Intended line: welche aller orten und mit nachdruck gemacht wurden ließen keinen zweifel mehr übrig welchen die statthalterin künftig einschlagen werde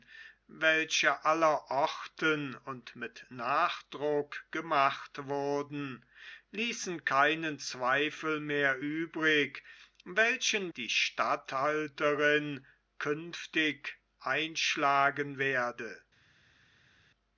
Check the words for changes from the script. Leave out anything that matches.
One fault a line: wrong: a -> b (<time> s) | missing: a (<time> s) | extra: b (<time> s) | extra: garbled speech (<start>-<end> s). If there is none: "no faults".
no faults